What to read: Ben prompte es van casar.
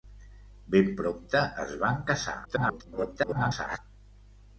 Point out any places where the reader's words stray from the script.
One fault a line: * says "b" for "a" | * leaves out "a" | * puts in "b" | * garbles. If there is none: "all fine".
* garbles